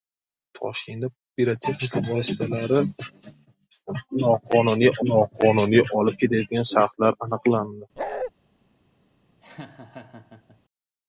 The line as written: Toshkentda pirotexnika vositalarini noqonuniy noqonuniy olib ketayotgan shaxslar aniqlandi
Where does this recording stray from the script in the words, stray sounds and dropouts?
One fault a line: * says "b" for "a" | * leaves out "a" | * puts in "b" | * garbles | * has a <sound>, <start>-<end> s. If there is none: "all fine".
* has a bark, 8.0-8.3 s
* has a laugh, 9.4-10.6 s